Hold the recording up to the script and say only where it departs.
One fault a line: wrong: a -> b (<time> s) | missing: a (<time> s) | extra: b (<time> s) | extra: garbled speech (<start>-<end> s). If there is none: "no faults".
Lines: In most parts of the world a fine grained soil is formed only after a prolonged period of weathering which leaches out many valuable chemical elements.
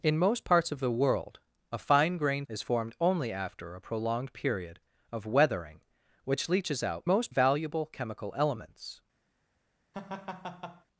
missing: soil (2.5 s)
wrong: many -> most (7.0 s)